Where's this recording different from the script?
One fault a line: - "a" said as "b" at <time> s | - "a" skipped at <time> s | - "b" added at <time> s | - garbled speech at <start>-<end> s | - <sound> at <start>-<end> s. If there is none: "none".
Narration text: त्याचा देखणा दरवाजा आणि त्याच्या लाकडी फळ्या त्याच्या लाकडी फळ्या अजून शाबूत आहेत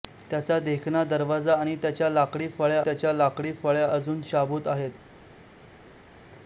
none